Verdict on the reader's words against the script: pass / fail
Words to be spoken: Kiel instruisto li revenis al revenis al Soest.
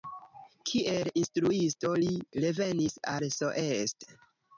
fail